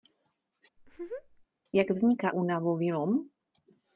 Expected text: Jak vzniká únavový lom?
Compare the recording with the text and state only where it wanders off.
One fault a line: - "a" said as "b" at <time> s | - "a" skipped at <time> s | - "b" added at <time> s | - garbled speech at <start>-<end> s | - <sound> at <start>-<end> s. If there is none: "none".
- laugh at 0.8-1.5 s